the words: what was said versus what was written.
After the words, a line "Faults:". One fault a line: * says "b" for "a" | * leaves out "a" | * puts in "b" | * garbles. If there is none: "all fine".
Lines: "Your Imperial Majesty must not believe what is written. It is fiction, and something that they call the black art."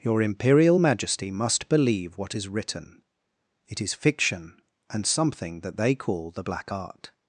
"Your Imperial Majesty must believe what is written. It is fiction, and something that they call the black art."
Faults:
* leaves out "not"